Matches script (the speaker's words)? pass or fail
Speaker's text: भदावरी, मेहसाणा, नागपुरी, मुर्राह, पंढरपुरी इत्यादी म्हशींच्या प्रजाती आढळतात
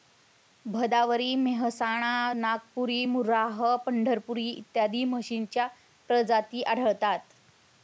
pass